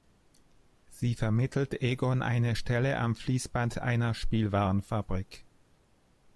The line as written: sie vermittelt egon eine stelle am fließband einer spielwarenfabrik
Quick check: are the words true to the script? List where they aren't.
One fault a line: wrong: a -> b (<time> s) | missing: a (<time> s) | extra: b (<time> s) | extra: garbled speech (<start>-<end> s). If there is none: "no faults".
no faults